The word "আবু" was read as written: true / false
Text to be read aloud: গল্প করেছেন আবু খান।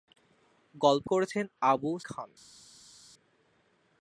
true